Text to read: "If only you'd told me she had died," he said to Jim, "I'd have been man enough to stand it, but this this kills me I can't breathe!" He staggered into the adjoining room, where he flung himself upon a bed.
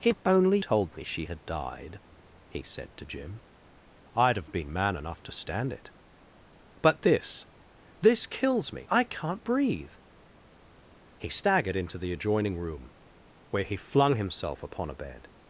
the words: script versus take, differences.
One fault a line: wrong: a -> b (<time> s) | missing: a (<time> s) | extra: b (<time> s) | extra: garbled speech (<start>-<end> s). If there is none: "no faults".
missing: you'd (0.6 s)